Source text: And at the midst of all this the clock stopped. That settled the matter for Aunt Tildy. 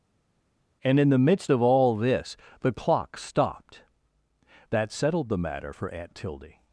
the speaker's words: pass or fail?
fail